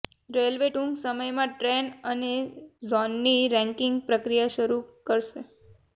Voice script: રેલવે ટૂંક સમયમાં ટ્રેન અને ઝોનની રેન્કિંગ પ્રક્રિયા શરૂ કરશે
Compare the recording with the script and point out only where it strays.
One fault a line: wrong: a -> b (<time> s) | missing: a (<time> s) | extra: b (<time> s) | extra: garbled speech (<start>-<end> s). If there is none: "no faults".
no faults